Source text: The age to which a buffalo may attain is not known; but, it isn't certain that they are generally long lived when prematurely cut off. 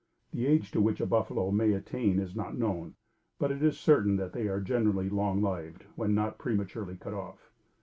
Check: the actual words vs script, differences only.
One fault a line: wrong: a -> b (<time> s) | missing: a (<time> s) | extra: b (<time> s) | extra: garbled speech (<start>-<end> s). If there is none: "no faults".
wrong: isn't -> is (3.6 s)
extra: not (6.2 s)